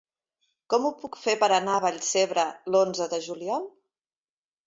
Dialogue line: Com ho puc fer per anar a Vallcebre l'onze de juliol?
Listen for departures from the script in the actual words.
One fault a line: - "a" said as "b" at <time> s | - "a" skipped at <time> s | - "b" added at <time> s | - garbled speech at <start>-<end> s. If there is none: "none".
none